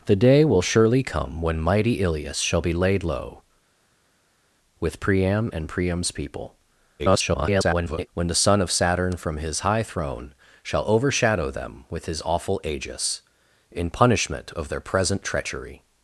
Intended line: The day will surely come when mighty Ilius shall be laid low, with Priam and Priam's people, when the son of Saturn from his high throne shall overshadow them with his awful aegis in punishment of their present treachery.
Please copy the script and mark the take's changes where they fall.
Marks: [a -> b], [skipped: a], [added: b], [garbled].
The day will surely come when mighty Ilius shall be laid low, with Priam and Priam's people, [garbled] when the son of Saturn from his high throne shall overshadow them with his awful aegis in punishment of their present treachery.